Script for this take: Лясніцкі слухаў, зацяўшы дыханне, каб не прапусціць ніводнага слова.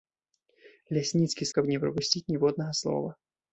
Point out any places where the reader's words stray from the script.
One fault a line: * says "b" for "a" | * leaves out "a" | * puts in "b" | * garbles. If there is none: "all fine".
* leaves out "слухаў зацяўшы дыханне"